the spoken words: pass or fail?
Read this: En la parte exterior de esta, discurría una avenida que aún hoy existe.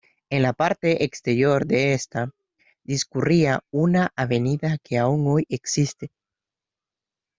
pass